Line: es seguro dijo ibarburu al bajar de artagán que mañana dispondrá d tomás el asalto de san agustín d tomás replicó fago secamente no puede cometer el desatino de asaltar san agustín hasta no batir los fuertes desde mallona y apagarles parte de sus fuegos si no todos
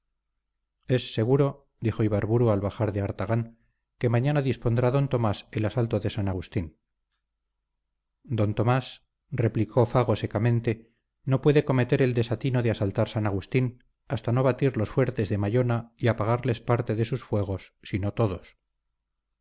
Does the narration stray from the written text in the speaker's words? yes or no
yes